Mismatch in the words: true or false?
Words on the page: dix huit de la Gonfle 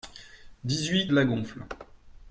false